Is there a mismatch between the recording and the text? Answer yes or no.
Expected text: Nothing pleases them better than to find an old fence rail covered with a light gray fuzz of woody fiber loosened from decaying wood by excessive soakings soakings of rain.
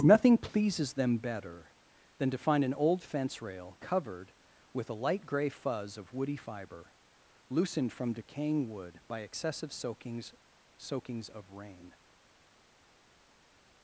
no